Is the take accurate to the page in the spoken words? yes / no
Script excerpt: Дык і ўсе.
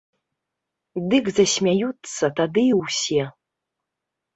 no